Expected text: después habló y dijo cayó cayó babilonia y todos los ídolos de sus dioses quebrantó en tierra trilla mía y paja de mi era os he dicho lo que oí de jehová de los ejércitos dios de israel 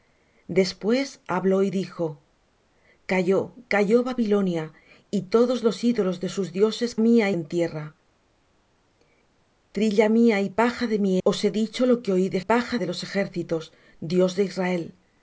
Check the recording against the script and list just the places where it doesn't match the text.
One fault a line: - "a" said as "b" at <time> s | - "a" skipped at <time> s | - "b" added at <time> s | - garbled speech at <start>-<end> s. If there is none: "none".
- "quebrantó" said as "mía" at 7.0 s
- "era" skipped at 11.2 s
- "jehová" said as "paja" at 12.4 s